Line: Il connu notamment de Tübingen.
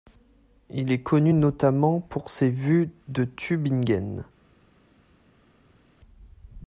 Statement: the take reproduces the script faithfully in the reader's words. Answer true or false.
false